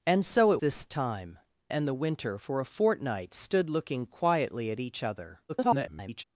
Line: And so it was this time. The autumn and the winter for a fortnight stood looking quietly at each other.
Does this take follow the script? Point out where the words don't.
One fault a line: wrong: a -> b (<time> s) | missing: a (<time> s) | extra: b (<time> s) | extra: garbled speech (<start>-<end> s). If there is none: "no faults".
missing: was (0.6 s)
missing: The autumn (1.4 s)
extra: garbled speech (5.5-6.2 s)